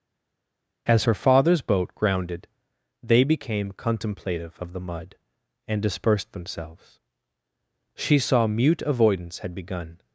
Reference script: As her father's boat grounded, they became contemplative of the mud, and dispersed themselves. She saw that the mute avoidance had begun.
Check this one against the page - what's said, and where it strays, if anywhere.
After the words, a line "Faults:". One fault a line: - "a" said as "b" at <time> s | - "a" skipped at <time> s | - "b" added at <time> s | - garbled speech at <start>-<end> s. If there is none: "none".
As her father's boat grounded, they became contemplative of the mud, and dispersed themselves. She saw mute avoidance had begun.
Faults:
- "that the" skipped at 8.5 s